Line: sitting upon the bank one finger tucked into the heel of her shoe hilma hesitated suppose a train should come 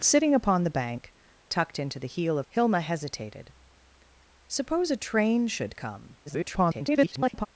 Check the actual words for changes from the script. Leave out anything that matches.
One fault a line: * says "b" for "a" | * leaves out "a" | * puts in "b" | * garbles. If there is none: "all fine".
* leaves out "one finger"
* leaves out "her shoe"
* garbles